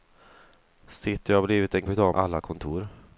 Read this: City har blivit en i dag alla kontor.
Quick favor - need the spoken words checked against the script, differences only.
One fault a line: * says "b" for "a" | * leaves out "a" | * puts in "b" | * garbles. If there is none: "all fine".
all fine